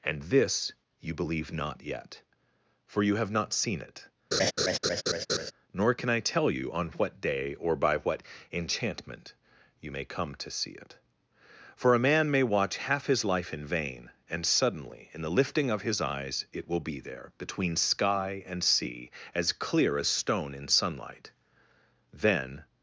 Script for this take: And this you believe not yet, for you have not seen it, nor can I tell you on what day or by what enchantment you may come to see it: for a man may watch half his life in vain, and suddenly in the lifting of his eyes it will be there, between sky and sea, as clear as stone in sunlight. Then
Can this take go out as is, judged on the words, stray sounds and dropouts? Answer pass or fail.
fail